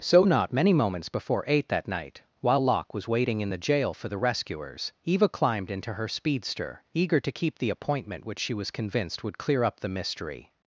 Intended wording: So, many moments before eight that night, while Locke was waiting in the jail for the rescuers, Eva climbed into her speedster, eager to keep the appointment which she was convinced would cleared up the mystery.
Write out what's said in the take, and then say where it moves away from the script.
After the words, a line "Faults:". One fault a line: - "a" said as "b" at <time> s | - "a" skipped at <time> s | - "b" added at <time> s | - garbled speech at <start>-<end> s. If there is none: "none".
So, not many moments before eight that night, while Locke was waiting in the jail for the rescuers, Eva climbed into her speedster, eager to keep the appointment which she was convinced would clear up the mystery.
Faults:
- "not" added at 0.2 s
- "cleared" said as "clear" at 9.4 s